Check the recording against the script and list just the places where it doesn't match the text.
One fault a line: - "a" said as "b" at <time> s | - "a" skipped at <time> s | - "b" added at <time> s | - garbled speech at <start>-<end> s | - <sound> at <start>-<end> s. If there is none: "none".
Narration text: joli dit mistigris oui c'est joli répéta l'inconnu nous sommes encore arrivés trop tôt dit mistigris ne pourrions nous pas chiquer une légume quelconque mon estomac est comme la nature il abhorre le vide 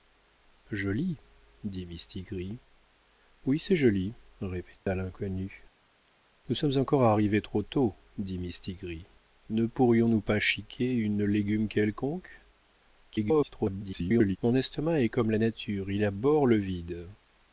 - dropout at 4.8-4.9 s
- garbled speech at 13.1-14.4 s